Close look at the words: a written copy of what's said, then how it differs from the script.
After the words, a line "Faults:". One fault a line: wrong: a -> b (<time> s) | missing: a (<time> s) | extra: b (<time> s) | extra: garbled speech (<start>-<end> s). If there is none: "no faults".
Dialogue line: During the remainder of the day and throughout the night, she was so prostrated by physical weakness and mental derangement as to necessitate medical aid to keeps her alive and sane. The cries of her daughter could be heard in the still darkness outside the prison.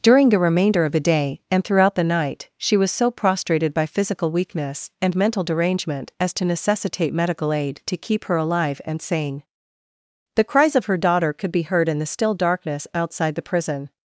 During the remainder of the day and throughout the night, she was so prostrated by physical weakness and mental derangement as to necessitate medical aid to keep her alive and sane. The cries of her daughter could be heard in the still darkness outside the prison.
Faults:
wrong: keeps -> keep (8.0 s)